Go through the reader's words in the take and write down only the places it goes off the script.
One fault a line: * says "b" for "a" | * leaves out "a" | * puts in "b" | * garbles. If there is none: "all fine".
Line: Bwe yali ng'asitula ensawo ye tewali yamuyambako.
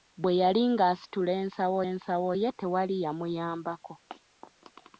* puts in "ensawo"